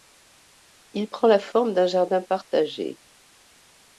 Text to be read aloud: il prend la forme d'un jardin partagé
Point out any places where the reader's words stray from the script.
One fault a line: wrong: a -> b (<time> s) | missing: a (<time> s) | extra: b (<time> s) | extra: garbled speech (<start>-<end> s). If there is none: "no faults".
no faults